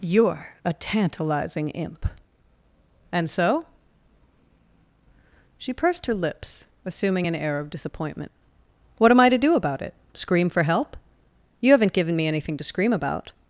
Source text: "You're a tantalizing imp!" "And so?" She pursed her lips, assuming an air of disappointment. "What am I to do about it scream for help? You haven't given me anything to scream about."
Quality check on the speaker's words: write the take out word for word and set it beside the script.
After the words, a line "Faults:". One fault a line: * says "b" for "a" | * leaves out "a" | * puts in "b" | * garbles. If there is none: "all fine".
"You're a tantalizing imp!" "And so?" She pursed her lips, assuming an air of disappointment. "What am I to do about it scream for help? You haven't given me anything to scream about."
Faults:
all fine